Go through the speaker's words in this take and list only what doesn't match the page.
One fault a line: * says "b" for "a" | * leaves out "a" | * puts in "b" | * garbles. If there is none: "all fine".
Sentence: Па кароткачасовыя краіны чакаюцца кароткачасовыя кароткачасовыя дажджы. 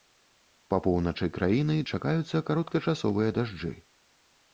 * says "поўначы" for "кароткачасовыя"
* leaves out "кароткачасовыя"